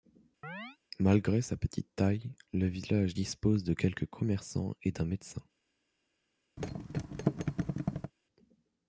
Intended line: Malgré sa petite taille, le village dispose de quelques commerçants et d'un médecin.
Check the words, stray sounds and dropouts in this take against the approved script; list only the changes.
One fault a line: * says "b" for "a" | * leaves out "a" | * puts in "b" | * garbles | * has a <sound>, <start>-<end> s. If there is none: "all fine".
* has a chirp, 0.4-0.8 s
* has a thud, 6.6-8.1 s